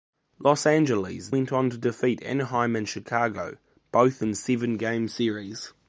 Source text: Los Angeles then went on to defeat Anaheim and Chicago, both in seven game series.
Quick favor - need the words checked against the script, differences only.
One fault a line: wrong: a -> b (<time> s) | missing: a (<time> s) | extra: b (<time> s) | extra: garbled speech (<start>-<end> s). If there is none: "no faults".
missing: then (1.3 s)